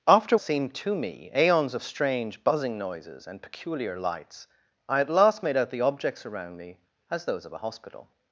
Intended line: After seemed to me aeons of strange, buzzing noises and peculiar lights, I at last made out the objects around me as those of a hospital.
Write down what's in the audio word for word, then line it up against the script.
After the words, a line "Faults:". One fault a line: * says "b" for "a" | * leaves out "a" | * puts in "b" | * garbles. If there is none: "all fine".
After seemed to me aeons of strange, buzzing noises and peculiar lights, I at last made out the objects around me as those of a hospital.
Faults:
all fine